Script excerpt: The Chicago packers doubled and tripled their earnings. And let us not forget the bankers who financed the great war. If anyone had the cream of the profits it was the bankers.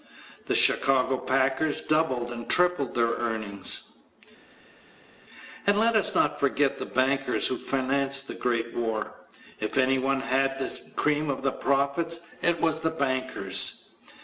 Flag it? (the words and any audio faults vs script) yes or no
no